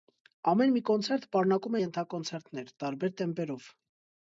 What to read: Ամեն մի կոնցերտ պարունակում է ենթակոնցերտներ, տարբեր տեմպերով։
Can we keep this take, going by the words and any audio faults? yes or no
yes